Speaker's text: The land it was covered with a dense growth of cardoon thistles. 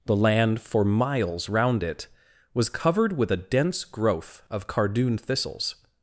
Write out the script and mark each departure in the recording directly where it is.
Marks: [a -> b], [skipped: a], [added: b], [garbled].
The land [added: for miles round] it was covered with a dense growth of cardoon thistles.